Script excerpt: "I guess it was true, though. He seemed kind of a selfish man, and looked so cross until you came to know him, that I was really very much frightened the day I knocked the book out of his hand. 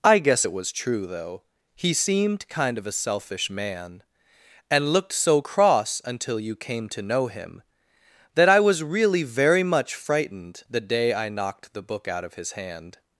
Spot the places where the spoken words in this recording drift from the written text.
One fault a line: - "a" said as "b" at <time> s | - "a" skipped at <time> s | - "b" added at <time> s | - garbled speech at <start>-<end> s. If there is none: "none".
none